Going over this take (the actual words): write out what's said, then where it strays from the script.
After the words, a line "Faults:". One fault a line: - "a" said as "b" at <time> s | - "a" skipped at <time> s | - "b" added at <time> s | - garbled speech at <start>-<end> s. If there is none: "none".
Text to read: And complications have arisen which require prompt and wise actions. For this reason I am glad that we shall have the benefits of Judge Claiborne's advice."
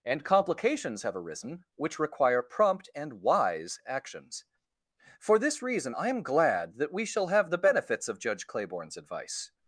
And complications have arisen which require prompt and wise actions. For this reason I am glad that we shall have the benefits of Judge Claiborne's advice."
Faults:
none